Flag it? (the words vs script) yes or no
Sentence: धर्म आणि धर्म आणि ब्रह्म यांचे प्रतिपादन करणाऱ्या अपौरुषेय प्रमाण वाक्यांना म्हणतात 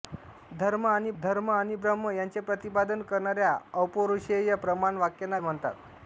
no